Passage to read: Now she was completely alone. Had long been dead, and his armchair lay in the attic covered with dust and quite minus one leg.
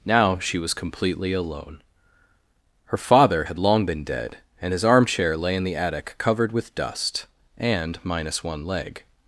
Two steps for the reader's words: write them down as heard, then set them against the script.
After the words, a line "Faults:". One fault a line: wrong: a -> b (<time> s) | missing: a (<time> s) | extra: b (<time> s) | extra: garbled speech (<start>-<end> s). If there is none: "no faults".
Now she was completely alone. Her father had long been dead, and his armchair lay in the attic covered with dust and minus one leg.
Faults:
extra: Her father (2.9 s)
missing: quite (8.0 s)